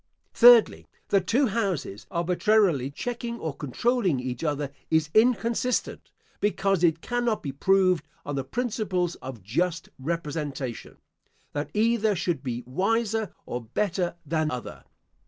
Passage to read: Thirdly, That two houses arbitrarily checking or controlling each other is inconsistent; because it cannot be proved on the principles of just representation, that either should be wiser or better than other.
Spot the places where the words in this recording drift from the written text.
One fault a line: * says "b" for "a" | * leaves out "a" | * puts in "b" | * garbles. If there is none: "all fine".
all fine